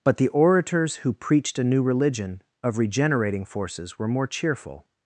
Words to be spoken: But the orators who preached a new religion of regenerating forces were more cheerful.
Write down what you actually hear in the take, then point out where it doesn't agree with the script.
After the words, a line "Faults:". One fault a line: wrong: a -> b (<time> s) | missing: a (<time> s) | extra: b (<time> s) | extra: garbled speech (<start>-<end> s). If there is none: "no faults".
But the orators who preached a new religion of regenerating forces were more cheerful.
Faults:
no faults